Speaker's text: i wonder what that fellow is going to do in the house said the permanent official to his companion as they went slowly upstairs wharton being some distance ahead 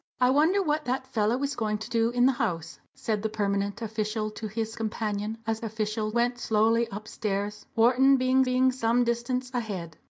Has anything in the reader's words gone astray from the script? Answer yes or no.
yes